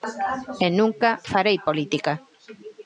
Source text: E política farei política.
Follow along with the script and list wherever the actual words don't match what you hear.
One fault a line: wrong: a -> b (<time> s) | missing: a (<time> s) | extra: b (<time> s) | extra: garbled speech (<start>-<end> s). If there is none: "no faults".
wrong: política -> nunca (0.7 s)